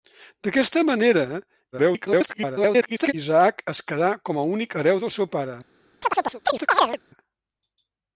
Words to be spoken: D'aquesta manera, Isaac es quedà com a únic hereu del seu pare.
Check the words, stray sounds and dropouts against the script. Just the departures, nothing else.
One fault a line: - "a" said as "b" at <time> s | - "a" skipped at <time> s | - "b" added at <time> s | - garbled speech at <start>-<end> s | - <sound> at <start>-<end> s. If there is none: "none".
- garbled speech at 1.7-3.1 s
- chirp at 6.0-7.0 s